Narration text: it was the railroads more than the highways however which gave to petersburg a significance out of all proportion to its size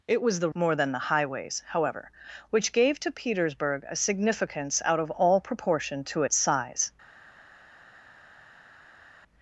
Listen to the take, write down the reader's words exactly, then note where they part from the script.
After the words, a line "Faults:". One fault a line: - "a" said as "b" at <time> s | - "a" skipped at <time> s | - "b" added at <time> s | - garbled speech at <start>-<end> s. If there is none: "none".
it was the more than the highways however which gave to petersburg a significance out of all proportion to its size
Faults:
- "railroads" skipped at 0.5 s